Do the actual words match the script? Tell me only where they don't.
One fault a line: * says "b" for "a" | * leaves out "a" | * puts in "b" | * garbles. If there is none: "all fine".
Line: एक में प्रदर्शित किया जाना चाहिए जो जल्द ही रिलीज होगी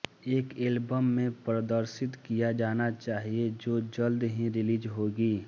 * puts in "एल्बम"